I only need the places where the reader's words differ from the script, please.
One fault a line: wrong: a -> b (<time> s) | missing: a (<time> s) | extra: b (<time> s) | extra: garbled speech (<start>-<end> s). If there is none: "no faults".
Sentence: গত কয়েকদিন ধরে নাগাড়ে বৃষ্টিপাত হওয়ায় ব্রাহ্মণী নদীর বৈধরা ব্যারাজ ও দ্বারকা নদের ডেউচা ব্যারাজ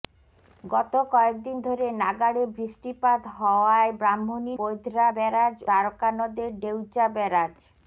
missing: নদীর (4.5 s)
missing: ও (5.6 s)